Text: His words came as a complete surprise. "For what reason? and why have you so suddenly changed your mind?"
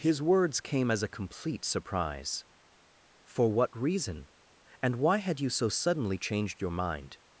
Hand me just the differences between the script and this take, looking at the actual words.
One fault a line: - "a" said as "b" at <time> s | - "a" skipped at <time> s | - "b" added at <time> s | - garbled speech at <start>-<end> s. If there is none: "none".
- "have" said as "had" at 5.2 s